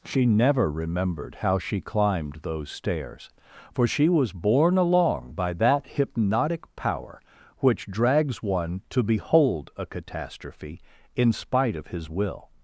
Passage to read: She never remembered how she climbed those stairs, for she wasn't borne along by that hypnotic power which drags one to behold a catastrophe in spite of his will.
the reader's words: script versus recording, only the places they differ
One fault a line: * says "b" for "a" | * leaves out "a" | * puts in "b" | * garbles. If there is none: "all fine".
* says "was" for "wasn't"